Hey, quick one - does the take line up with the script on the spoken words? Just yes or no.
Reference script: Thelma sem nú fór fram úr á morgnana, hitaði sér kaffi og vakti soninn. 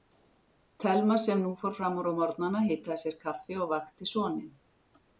yes